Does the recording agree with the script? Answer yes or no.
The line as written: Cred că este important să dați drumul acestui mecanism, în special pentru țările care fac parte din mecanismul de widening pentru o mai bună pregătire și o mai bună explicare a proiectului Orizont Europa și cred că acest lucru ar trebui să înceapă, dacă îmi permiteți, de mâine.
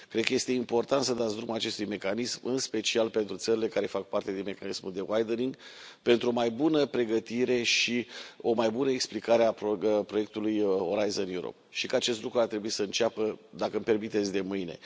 no